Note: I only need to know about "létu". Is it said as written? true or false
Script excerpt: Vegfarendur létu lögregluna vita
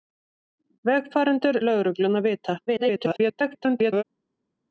false